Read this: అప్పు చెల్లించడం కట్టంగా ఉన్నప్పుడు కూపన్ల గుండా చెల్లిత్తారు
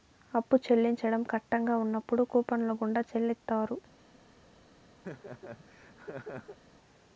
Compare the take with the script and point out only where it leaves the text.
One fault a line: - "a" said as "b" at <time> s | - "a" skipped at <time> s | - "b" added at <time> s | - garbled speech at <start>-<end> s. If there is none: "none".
none